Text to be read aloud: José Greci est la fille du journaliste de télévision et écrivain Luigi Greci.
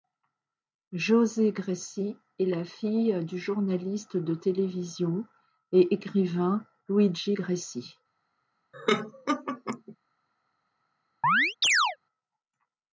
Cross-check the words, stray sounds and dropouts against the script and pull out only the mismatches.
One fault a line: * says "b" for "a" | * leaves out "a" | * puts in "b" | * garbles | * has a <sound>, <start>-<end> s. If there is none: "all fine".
* has a laugh, 8.7-10.0 s
* has a chirp, 11.2-12.0 s